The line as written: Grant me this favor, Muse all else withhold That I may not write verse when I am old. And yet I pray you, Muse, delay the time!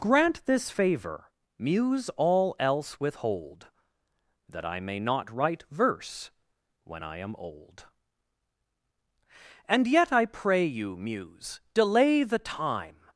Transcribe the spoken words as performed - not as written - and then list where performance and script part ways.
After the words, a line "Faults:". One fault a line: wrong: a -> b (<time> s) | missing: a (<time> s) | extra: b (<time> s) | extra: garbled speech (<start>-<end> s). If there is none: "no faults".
Grant this favor, Muse all else withhold That I may not write verse when I am old. And yet I pray you, Muse, delay the time!
Faults:
missing: me (0.5 s)